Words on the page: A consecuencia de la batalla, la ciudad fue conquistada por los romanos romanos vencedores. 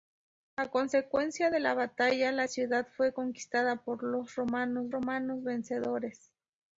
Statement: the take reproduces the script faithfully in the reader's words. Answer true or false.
true